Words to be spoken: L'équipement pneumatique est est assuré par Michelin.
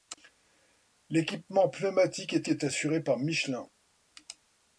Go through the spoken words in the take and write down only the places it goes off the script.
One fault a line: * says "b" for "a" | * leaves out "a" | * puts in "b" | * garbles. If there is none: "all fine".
all fine